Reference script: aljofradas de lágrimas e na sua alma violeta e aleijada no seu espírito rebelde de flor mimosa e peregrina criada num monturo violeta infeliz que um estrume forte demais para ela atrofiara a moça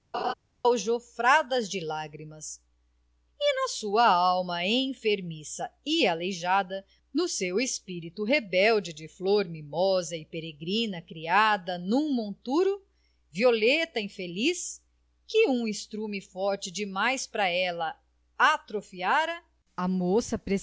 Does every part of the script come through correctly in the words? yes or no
no